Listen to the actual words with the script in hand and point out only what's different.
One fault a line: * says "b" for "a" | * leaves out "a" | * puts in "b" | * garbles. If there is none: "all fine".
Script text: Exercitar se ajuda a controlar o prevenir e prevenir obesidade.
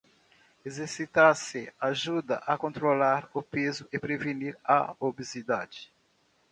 * says "peso" for "prevenir"
* puts in "a"